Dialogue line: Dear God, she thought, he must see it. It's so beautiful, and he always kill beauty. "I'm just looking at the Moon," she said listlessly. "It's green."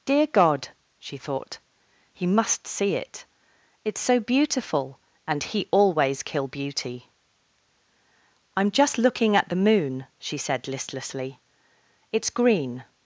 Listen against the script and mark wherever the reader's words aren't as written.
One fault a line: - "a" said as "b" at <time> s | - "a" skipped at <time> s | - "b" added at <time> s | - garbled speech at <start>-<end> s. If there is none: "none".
none